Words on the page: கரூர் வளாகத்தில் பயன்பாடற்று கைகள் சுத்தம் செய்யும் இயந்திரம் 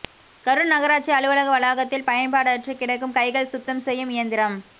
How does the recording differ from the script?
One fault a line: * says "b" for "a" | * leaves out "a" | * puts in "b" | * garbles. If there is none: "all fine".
* puts in "நகராட்சி அலுவலக"
* puts in "கிடக்கும்"